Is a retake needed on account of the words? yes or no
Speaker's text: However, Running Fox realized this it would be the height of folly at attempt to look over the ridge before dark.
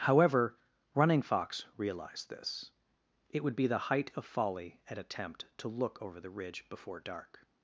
no